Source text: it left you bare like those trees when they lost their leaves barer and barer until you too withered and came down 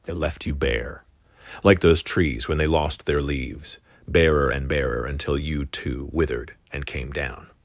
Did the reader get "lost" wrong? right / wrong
right